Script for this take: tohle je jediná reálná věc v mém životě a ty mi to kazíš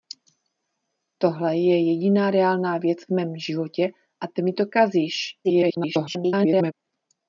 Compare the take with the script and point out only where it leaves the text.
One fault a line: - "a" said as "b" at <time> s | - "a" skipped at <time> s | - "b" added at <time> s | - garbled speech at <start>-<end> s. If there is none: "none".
- garbled speech at 5.4-6.7 s